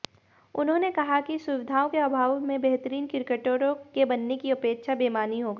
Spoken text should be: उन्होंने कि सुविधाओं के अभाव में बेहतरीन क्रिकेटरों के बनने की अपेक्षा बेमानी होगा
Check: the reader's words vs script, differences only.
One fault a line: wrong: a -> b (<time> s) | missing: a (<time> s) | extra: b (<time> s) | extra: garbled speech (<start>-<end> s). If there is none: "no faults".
extra: कहा (0.9 s)